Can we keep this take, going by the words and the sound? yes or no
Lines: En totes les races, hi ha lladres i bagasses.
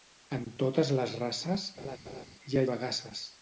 no